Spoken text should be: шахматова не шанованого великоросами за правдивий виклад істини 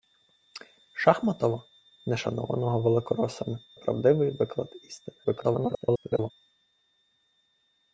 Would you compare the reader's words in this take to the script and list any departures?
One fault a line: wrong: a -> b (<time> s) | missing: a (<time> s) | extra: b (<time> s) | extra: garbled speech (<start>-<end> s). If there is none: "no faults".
missing: за (3.6 s)
extra: garbled speech (5.2-6.3 s)